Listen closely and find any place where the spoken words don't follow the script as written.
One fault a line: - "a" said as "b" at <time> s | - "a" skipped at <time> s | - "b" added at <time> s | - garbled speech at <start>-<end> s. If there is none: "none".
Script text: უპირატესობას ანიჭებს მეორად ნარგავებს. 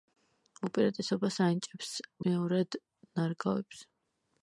none